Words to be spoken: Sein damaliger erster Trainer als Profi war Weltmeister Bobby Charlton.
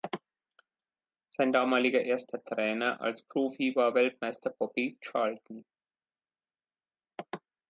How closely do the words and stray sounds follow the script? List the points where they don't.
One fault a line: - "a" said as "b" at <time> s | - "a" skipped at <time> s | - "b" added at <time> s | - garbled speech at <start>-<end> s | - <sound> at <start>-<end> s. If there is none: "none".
none